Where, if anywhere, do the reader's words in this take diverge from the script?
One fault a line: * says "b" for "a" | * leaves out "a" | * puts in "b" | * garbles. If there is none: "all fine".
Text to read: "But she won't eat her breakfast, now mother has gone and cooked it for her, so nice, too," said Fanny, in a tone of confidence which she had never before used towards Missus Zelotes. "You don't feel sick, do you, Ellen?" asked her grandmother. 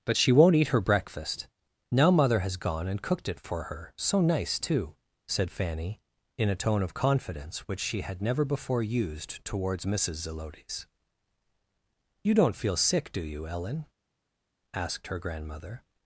all fine